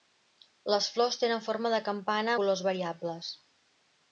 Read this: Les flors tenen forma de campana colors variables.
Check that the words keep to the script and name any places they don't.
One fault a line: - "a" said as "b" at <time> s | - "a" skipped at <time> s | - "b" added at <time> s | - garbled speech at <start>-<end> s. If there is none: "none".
none